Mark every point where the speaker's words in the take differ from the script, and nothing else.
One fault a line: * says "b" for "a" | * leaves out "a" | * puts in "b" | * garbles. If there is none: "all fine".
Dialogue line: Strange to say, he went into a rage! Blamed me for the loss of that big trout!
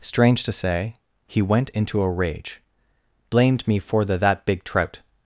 * leaves out "loss of"